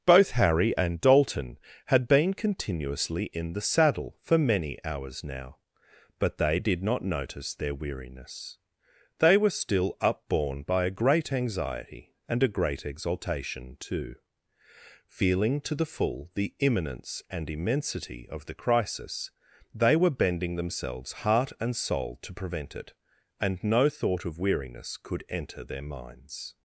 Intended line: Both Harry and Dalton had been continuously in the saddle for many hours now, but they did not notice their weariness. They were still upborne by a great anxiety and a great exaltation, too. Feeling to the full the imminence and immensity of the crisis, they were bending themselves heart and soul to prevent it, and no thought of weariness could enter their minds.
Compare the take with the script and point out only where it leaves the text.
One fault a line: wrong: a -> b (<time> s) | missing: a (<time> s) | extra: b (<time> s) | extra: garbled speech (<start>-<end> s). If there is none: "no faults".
no faults